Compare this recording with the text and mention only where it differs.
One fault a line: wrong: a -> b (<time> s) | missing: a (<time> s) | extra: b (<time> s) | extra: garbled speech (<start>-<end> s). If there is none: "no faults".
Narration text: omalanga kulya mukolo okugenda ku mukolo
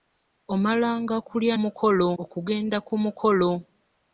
no faults